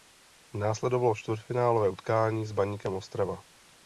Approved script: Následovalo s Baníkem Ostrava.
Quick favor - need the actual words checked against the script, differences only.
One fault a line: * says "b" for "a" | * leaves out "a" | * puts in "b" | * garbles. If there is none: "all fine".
* puts in "čtvrtfinálové utkání"